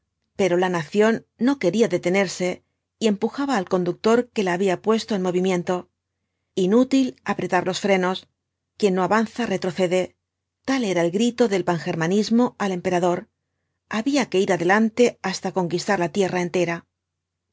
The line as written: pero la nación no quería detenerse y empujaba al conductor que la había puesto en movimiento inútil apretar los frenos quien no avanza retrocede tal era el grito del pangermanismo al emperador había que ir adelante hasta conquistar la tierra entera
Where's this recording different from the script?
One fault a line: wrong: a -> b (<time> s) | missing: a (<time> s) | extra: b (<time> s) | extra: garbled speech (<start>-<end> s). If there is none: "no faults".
no faults